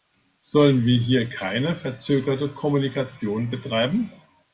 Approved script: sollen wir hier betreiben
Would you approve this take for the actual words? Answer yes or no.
no